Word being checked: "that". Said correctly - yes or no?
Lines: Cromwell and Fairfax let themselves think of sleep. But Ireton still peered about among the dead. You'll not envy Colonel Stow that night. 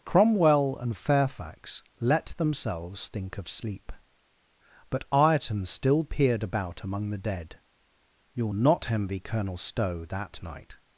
yes